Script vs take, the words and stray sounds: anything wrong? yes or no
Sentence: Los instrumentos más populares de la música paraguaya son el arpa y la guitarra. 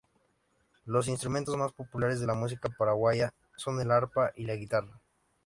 no